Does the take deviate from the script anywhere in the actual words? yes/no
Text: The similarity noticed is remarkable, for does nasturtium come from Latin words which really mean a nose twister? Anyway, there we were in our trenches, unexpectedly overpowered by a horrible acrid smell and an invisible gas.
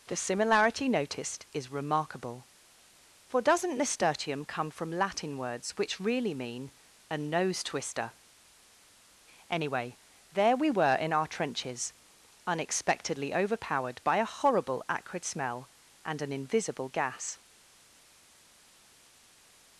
yes